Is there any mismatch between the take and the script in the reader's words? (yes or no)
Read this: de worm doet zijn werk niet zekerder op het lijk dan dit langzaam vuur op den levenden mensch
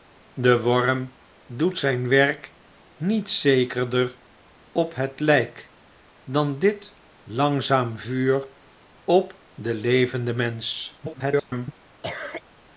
yes